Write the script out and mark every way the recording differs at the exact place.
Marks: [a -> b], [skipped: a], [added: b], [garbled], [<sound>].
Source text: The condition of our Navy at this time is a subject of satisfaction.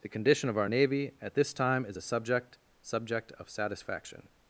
The condition of our Navy at this time is a subject [added: subject] of satisfaction.